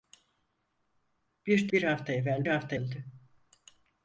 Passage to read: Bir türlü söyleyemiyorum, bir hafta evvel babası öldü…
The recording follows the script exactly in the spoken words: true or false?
false